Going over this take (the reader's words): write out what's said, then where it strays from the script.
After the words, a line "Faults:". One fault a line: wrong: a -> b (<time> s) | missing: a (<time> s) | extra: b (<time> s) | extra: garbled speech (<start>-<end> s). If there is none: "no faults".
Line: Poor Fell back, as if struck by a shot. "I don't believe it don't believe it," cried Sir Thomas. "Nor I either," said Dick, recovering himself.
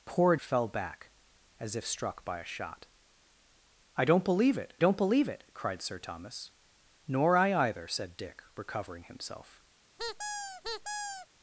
Poor Fell back, as if struck by a shot. "I don't believe it don't believe it," cried Sir Thomas. "Nor I either," said Dick, recovering himself.
Faults:
no faults